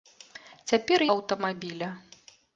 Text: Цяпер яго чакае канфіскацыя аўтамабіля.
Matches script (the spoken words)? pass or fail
fail